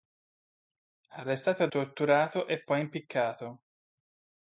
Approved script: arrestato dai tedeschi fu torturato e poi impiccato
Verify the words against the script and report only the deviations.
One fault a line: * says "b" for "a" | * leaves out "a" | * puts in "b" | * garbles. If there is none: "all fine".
* leaves out "dai tedeschi fu"